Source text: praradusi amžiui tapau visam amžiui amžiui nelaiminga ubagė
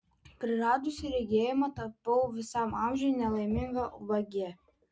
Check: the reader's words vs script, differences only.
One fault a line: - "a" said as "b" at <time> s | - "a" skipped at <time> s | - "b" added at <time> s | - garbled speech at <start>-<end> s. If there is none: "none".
- "amžiui" said as "regėjimą" at 1.1 s
- "amžiui" skipped at 3.1 s